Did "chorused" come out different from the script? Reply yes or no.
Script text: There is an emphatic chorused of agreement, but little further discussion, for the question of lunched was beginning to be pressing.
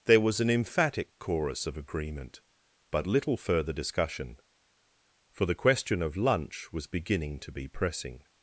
yes